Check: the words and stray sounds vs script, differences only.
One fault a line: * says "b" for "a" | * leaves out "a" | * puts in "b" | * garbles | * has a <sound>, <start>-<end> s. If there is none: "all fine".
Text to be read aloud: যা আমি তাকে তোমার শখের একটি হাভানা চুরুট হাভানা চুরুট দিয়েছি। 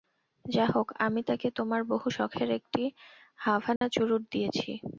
* puts in "হোক"
* puts in "বহু"
* has a dropout, 3.8-3.8 s
* leaves out "হাভানা চুরুট"